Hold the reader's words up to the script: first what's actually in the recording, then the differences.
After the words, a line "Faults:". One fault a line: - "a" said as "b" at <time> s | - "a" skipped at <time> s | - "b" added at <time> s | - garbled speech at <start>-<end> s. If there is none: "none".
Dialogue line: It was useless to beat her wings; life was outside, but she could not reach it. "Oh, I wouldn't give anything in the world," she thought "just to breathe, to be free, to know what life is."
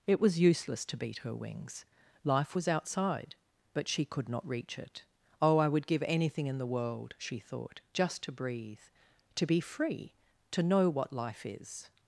It was useless to beat her wings; life was outside, but she could not reach it. "Oh, I would give anything in the world," she thought "just to breathe, to be free, to know what life is."
Faults:
- "wouldn't" said as "would" at 5.7 s